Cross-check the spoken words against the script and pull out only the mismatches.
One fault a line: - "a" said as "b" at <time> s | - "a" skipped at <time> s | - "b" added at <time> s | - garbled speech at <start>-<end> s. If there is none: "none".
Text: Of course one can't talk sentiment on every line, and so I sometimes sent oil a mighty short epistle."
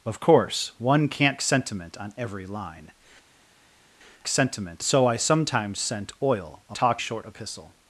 - "talk" skipped at 1.4 s
- "and" said as "sentiment" at 4.3 s
- "mighty" said as "talk" at 6.7 s